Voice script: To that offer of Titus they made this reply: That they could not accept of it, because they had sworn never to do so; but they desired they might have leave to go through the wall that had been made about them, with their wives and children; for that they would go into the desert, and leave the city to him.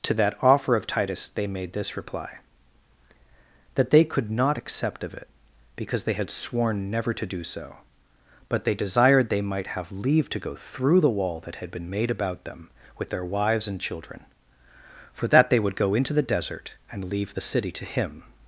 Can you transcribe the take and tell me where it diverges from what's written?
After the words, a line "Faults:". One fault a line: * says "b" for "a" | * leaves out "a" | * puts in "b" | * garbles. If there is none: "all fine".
To that offer of Titus they made this reply: That they could not accept of it, because they had sworn never to do so; but they desired they might have leave to go through the wall that had been made about them, with their wives and children; for that they would go into the desert, and leave the city to him.
Faults:
all fine